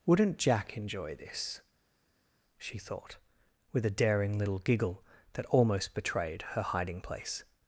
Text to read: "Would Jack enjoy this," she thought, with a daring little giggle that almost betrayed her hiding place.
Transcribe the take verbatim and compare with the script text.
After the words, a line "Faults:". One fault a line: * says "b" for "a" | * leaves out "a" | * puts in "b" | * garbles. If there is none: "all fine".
"Wouldn't Jack enjoy this," she thought, with a daring little giggle that almost betrayed her hiding place.
Faults:
* says "Wouldn't" for "Would"